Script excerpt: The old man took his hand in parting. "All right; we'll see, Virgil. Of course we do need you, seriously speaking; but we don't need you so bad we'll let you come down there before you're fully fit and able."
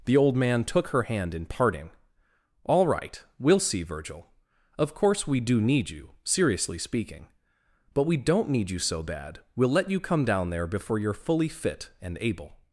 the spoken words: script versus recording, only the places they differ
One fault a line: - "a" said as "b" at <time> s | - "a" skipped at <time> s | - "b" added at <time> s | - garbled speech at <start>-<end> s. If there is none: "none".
- "his" said as "her" at 0.9 s